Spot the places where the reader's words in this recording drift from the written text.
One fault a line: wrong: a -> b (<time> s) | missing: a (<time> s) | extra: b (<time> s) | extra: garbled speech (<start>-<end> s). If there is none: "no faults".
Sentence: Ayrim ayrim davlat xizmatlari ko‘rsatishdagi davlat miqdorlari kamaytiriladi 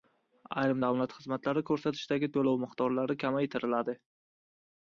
missing: ayrim (0.8 s)
wrong: davlat -> to‘lov (2.4 s)